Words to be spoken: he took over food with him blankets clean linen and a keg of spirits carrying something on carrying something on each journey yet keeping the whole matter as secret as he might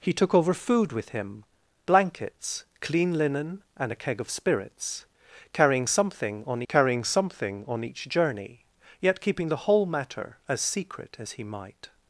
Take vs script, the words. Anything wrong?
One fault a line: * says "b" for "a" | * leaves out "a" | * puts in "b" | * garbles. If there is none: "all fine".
all fine